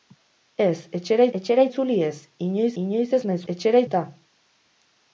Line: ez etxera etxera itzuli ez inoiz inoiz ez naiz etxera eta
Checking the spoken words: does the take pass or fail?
pass